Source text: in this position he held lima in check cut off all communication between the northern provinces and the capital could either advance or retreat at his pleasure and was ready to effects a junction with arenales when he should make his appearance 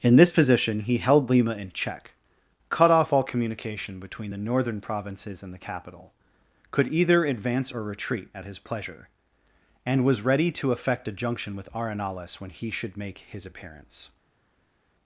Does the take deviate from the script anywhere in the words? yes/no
yes